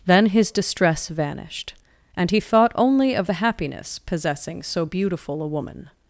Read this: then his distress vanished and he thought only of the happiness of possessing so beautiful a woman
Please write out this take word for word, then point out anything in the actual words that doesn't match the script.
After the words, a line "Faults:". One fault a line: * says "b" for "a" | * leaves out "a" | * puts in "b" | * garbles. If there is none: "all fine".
then his distress vanished and he thought only of the happiness possessing so beautiful a woman
Faults:
* leaves out "of"